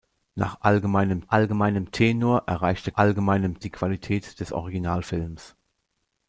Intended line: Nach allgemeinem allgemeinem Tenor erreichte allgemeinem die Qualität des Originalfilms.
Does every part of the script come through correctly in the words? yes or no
yes